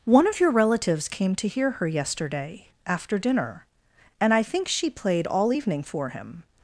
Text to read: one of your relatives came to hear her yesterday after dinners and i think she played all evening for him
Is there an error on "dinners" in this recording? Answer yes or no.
yes